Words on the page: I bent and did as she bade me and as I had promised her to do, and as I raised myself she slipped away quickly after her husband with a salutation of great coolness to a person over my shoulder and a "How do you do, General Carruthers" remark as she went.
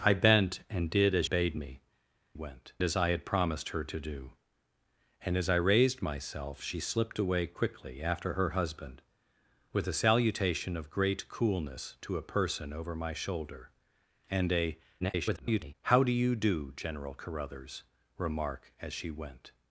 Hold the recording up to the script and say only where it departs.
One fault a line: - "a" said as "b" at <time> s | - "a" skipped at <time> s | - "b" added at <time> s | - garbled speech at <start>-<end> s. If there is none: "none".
- "she" skipped at 1.3 s
- "and" said as "went" at 2.3 s
- garbled speech at 15.0-15.7 s